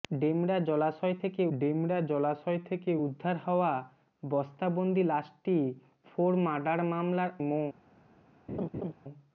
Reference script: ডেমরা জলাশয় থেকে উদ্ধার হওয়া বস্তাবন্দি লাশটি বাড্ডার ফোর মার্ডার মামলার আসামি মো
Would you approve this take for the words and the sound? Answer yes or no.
no